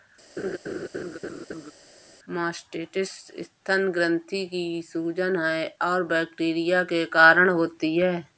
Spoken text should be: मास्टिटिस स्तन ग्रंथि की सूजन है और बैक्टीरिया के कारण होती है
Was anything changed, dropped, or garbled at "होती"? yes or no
no